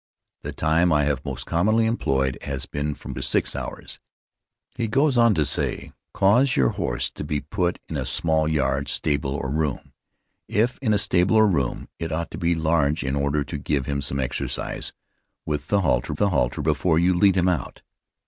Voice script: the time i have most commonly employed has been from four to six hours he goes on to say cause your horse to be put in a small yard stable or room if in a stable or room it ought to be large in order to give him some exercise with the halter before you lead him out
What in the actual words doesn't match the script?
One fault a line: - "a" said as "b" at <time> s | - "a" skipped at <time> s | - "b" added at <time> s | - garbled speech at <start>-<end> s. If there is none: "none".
- "four" skipped at 3.1 s
- "the halter" added at 16.2 s